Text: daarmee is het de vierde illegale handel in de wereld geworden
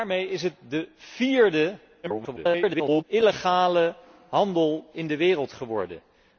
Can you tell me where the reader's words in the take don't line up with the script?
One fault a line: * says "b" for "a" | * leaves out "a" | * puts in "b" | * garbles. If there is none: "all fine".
* garbles